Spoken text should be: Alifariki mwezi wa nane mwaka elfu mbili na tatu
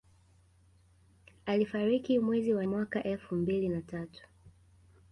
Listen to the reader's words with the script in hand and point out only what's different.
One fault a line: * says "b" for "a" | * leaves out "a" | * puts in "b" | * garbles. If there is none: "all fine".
* leaves out "nane"